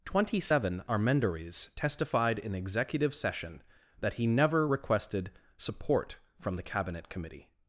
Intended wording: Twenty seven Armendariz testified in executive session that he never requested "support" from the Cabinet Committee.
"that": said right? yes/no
yes